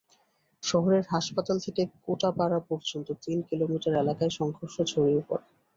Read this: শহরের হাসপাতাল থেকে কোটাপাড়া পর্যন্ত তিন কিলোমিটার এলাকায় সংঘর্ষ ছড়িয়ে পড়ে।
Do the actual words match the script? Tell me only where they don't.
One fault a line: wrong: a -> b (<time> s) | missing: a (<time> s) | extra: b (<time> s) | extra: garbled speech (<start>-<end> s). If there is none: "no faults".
no faults